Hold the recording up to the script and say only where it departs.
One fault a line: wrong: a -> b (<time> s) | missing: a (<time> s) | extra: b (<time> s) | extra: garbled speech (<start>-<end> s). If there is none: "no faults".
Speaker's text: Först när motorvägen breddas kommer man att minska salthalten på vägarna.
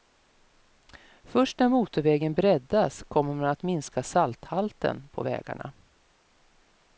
no faults